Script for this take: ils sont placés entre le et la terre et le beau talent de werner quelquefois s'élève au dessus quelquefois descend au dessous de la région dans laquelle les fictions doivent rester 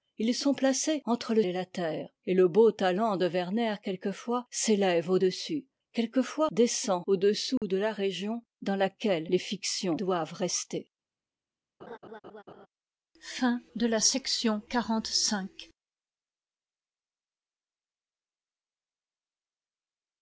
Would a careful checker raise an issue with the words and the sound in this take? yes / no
yes